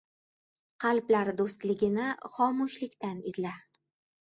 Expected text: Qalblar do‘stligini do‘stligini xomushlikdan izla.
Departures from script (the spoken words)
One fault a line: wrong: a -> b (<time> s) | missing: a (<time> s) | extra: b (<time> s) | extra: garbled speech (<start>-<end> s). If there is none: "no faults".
missing: do‘stligini (2.1 s)